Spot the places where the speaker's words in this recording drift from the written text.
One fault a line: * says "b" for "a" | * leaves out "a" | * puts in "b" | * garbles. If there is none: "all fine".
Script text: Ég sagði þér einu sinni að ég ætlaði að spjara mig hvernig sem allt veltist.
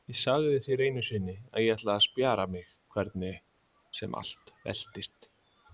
all fine